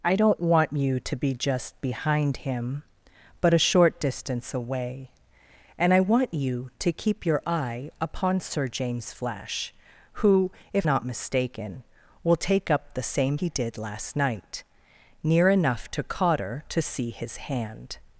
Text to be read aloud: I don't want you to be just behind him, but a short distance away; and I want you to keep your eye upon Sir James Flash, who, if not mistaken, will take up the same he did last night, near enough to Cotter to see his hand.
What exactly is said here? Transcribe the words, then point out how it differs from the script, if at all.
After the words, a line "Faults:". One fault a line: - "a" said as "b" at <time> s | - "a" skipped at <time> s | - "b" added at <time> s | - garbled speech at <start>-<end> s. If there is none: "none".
I don't want you to be just behind him, but a short distance away; and I want you to keep your eye upon Sir James Flash, who, if not mistaken, will take up the same he did last night, near enough to Cotter to see his hand.
Faults:
none